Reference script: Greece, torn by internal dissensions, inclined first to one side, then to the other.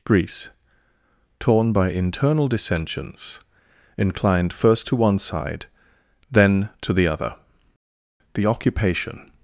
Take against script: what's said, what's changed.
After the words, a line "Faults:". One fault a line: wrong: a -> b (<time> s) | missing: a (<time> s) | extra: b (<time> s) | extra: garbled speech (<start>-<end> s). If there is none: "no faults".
Greece, torn by internal dissensions, inclined first to one side, then to the other. The occupation
Faults:
extra: The occupation (8.3 s)